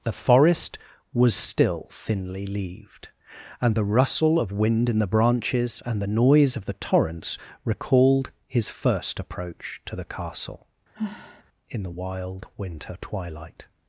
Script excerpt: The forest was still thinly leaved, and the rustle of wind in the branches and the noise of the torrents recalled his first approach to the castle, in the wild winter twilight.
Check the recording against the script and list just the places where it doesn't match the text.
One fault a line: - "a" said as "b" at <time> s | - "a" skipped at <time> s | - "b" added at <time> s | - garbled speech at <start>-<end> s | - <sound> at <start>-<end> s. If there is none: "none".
- sigh at 10.9-11.4 s